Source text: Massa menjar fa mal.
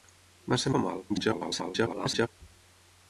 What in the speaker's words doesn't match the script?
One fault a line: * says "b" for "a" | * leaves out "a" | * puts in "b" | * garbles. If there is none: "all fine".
* leaves out "menjar"
* garbles